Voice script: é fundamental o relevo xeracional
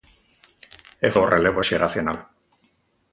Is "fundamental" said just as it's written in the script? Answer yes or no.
no